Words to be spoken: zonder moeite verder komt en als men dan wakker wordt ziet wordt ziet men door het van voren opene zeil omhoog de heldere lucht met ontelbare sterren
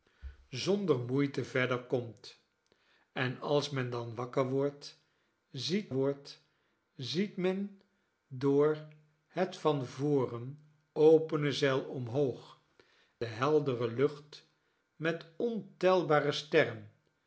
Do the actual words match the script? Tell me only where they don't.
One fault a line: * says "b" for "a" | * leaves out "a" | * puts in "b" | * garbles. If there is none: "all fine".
all fine